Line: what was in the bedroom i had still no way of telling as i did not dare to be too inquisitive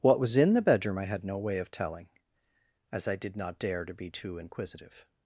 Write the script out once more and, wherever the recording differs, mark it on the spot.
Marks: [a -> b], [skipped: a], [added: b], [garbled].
what was in the bedroom i had [skipped: still] no way of telling as i did not dare to be too inquisitive